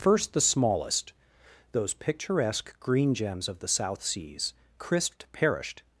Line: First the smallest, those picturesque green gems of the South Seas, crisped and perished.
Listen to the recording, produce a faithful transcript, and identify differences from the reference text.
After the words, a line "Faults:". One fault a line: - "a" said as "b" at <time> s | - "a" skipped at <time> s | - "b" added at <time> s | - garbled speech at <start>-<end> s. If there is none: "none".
First the smallest, those picturesque green gems of the South Seas, crisped perished.
Faults:
- "and" skipped at 5.3 s